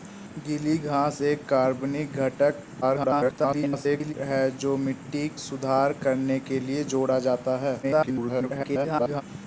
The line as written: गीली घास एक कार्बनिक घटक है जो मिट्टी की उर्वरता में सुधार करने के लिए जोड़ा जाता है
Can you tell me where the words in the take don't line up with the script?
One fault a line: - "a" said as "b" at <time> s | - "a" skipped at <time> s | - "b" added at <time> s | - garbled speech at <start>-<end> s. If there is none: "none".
- garbled speech at 2.8-4.1 s
- "की उर्वरता में" skipped at 5.3 s
- garbled speech at 7.8-9.2 s